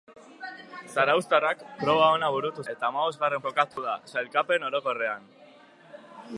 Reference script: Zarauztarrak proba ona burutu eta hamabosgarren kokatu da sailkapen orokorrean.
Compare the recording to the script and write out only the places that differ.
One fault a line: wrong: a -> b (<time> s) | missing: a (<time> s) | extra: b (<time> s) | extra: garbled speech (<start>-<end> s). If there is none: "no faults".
no faults